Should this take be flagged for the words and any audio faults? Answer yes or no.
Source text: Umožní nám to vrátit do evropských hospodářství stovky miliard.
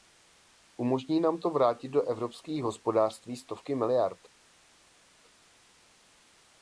no